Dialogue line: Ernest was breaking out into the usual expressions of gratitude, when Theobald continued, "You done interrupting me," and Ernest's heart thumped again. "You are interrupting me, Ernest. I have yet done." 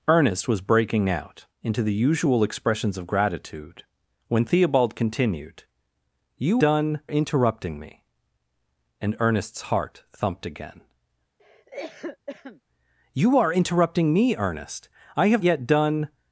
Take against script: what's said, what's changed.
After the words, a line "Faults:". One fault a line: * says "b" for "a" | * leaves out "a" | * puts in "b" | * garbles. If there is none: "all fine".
Ernest was breaking out into the usual expressions of gratitude, when Theobald continued, "You done interrupting me," and Ernest's heart thumped again. "You are interrupting me, Ernest. I have yet done."
Faults:
all fine